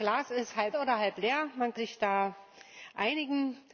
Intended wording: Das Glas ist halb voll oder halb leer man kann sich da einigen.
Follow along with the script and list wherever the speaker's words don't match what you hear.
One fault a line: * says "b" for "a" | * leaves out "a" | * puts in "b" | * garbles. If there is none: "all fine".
* leaves out "voll"
* leaves out "kann"